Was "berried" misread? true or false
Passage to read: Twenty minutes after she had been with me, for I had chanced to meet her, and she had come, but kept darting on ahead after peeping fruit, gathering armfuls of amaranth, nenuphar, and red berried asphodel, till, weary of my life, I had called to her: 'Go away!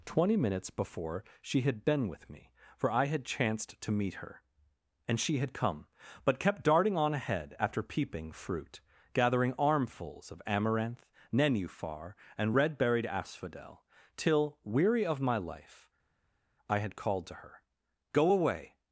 false